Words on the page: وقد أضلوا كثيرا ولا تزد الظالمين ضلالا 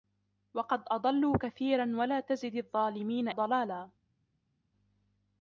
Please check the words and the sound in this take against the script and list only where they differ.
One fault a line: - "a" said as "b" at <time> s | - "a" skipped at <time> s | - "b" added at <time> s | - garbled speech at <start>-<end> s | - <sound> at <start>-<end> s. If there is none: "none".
none